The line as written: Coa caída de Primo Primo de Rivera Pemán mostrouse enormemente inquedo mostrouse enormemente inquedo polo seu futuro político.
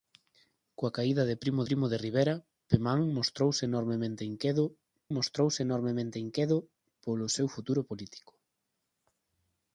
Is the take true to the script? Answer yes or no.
yes